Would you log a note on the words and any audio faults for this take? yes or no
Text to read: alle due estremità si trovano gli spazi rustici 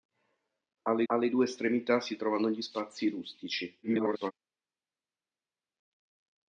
yes